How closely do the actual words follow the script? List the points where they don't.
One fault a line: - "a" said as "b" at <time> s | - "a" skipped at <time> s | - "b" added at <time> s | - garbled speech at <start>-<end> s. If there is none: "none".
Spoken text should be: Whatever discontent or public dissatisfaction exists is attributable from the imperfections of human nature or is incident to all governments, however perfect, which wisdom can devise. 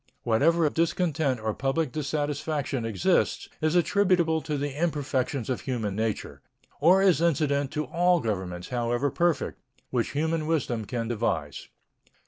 - "of" added at 0.6 s
- "from" said as "to" at 4.4 s
- "human" added at 10.1 s